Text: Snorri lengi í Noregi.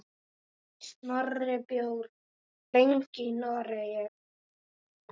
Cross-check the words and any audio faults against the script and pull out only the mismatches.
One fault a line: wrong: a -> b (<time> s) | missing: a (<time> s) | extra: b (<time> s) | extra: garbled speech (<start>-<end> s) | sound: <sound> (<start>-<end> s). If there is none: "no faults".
no faults